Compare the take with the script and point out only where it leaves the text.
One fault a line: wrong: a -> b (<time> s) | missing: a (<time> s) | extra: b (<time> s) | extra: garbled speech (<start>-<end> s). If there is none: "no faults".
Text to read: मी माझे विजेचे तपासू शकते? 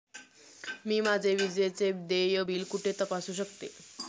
extra: देय बिल कुठे (2.1 s)